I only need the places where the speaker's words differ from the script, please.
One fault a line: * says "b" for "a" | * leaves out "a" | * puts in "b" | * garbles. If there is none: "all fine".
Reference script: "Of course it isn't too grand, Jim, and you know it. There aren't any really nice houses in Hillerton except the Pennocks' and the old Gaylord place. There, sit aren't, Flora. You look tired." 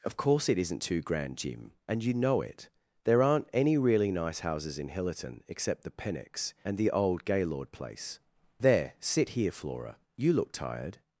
* says "here" for "aren't"